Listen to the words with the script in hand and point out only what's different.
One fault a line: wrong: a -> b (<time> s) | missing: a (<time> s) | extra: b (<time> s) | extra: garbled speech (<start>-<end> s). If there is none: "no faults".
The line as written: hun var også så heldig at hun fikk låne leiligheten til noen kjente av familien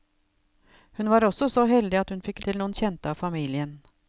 missing: låne leiligheten (2.4 s)